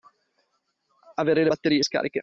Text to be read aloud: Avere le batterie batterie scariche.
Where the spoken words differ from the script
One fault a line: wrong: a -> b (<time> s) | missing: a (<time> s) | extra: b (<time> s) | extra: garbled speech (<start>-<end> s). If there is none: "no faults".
missing: batterie (1.8 s)